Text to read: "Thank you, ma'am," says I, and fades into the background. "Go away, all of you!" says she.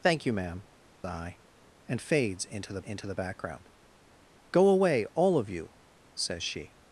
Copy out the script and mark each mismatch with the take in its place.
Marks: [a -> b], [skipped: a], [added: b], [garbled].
"Thank you, ma'am," [skipped: says] I, and fades into the [added: into the] background. "Go away, all of you!" says she.